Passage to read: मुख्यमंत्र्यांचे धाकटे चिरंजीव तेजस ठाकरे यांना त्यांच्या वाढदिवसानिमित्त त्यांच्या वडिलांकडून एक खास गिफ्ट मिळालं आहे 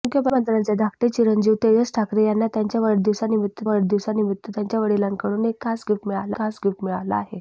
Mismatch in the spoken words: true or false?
true